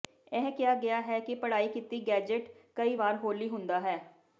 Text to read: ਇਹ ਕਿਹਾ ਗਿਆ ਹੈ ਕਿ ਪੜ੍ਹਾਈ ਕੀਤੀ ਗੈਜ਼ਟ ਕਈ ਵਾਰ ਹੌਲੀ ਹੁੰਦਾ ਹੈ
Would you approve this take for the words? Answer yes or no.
yes